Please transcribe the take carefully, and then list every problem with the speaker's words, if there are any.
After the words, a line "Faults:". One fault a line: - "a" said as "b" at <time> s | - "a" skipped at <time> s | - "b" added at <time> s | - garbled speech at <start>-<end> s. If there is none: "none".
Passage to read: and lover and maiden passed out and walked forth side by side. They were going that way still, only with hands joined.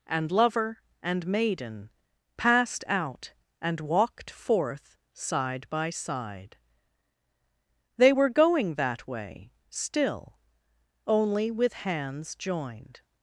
and lover and maiden passed out and walked forth side by side. They were going that way still, only with hands joined.
Faults:
none